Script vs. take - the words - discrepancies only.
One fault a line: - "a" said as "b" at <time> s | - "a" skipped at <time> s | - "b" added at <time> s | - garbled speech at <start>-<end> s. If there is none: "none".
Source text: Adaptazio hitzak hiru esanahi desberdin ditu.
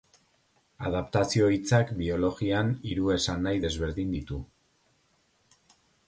- "biologian" added at 2.0 s